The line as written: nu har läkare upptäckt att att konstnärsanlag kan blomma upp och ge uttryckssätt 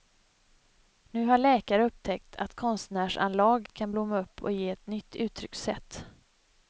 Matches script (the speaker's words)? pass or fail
fail